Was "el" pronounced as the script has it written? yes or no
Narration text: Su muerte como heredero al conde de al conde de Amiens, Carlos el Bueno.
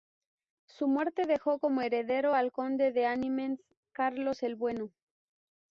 yes